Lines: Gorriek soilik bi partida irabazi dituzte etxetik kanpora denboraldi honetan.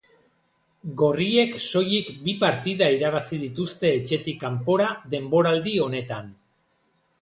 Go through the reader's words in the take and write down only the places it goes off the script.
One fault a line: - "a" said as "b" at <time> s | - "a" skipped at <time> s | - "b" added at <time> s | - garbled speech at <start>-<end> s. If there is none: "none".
none